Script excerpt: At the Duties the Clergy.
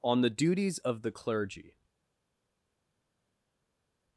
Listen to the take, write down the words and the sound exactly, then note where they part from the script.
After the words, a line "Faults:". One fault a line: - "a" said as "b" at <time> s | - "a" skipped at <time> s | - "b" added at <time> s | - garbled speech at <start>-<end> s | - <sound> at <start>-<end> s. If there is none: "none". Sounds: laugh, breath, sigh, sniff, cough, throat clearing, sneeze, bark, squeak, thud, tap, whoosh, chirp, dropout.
On the Duties of the Clergy.
Faults:
- "At" said as "On" at 0.0 s
- "of" added at 0.8 s